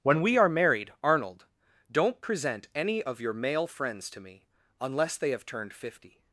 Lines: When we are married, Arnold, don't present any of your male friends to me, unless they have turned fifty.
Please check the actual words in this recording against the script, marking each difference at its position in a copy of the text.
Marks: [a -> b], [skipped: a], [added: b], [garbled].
When we are married, Arnold, don't present any of your male friends to me, unless they have turned fifty.